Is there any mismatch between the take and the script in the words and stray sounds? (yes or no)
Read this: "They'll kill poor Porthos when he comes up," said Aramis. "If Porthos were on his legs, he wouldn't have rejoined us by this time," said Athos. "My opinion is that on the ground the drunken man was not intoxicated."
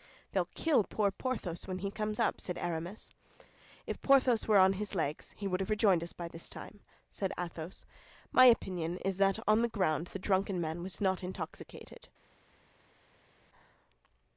yes